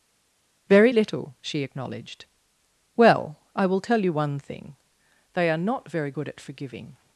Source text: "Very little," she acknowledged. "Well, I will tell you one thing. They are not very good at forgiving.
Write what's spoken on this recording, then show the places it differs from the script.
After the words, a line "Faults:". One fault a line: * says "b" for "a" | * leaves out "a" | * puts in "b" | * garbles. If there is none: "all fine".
"Very little," she acknowledged. "Well, I will tell you one thing. They are not very good at forgiving.
Faults:
all fine